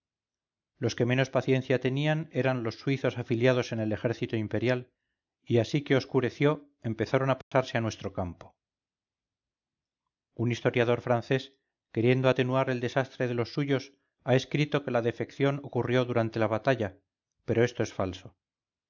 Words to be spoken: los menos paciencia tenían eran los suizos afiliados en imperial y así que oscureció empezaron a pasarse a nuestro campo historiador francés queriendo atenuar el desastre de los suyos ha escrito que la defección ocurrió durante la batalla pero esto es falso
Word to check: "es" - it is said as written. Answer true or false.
true